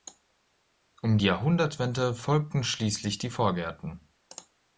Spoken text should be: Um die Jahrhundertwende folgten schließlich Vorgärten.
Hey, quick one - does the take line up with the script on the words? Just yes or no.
no